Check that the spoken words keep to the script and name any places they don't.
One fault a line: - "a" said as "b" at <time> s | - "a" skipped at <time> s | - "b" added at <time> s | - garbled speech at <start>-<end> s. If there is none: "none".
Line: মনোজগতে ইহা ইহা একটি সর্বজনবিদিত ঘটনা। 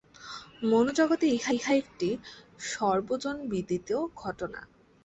none